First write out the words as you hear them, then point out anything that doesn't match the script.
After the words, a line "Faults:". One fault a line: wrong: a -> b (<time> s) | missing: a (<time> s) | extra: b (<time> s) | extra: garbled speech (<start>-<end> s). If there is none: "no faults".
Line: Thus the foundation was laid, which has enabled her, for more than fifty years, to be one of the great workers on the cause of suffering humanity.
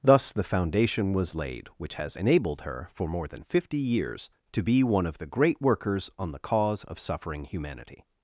Thus the foundation was laid, which has enabled her, for more than fifty years, to be one of the great workers on the cause of suffering humanity.
Faults:
no faults